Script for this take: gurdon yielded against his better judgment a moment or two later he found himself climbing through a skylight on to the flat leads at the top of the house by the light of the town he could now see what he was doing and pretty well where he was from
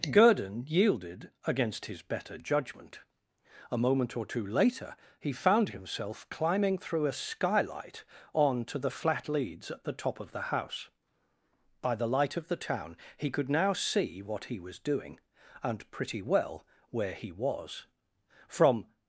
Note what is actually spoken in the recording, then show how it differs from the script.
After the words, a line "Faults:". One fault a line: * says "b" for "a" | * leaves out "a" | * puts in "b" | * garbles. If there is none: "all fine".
gurdon yielded against his better judgment a moment or two later he found himself climbing through a skylight on to the flat leads at the top of the house by the light of the town he could now see what he was doing and pretty well where he was from
Faults:
all fine